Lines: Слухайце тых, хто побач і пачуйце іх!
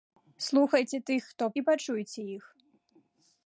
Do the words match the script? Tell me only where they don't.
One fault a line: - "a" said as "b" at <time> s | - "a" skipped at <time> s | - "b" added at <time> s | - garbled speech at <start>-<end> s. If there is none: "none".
- "побач" skipped at 1.4 s